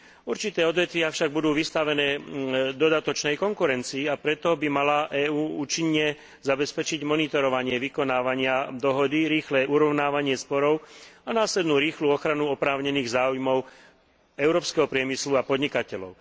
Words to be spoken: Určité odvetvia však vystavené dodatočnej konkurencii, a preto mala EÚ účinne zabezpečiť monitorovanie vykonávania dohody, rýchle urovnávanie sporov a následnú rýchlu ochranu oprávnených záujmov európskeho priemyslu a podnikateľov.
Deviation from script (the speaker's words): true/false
true